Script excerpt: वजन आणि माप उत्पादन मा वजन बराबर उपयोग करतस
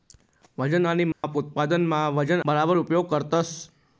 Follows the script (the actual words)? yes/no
yes